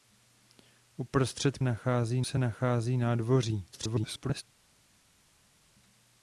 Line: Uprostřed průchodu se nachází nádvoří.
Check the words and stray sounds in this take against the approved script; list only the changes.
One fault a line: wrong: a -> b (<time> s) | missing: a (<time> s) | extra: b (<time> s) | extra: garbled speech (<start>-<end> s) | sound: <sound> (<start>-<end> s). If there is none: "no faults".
wrong: průchodu -> nachází (1.6 s)
extra: garbled speech (3.7-4.4 s)